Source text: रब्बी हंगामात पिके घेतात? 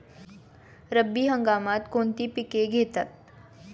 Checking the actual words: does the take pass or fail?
fail